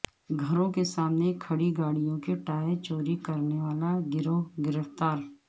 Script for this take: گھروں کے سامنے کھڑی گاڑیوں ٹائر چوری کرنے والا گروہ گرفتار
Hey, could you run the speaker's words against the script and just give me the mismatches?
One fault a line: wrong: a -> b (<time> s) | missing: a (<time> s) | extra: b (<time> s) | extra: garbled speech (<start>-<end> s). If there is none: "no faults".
extra: کے (2.2 s)